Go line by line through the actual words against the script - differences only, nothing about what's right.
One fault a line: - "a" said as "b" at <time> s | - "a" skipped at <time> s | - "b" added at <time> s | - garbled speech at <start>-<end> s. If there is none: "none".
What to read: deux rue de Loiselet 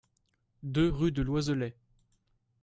none